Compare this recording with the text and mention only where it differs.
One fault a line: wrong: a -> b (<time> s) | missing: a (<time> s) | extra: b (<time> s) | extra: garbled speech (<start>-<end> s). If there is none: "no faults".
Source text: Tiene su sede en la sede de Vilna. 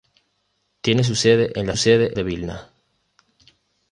no faults